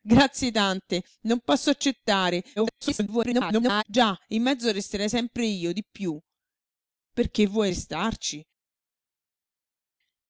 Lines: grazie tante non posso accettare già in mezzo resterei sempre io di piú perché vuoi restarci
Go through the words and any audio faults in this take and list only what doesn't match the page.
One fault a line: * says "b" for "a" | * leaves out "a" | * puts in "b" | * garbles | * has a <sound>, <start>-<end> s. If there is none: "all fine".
* garbles